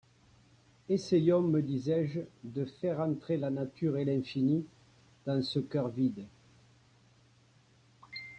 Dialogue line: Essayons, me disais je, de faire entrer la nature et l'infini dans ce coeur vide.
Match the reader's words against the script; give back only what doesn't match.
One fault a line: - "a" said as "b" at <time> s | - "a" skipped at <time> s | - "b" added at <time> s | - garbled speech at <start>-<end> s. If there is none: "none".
none